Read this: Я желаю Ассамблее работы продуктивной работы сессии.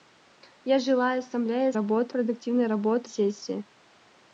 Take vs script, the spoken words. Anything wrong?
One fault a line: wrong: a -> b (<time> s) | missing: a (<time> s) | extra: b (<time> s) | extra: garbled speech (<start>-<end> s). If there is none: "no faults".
no faults